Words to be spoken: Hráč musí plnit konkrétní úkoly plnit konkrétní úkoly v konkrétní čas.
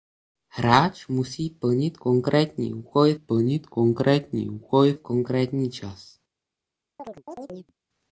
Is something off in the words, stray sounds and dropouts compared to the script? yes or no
yes